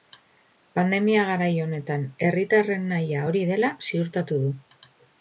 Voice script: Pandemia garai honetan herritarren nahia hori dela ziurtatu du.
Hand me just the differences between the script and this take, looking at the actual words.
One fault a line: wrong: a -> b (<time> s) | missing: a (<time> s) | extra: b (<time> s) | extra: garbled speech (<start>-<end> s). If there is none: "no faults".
no faults